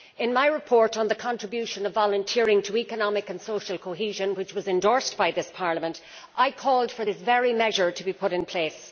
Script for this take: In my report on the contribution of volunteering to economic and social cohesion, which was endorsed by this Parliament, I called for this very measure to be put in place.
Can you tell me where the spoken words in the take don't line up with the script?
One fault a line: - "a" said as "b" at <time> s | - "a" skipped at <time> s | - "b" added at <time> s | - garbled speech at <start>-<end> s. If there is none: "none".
none